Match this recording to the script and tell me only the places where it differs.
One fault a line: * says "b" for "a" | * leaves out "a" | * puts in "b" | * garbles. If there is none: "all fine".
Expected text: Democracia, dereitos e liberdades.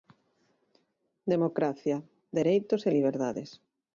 all fine